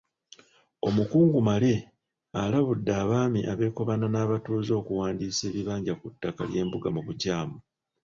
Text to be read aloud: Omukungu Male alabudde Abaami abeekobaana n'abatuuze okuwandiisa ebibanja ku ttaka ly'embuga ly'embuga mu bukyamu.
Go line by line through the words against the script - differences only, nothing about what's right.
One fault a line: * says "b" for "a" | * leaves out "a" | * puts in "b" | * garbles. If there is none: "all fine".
* leaves out "ly'embuga"